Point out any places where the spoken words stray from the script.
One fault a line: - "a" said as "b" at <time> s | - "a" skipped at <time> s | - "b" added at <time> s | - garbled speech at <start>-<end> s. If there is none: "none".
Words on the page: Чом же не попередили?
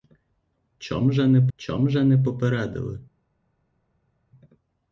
- "чом же не" added at 1.6 s